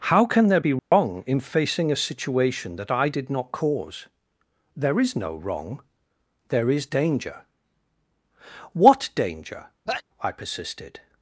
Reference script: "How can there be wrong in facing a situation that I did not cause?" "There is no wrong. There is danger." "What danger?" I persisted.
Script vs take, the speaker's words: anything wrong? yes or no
no